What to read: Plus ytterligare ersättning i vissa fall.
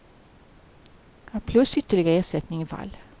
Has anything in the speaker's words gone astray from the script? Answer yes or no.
yes